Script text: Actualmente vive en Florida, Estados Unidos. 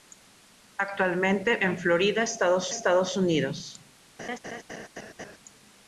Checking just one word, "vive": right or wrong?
wrong